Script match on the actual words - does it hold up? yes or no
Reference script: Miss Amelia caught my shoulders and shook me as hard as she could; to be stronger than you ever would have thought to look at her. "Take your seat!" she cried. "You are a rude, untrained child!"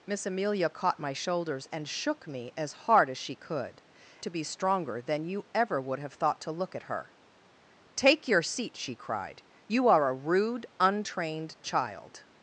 yes